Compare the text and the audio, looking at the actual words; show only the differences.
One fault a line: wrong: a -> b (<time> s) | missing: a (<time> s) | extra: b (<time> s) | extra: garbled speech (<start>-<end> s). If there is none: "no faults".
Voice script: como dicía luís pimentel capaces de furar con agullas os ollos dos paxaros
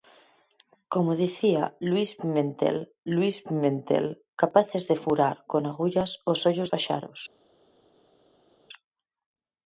extra: luís pimentel (3.1 s)
missing: dos (6.7 s)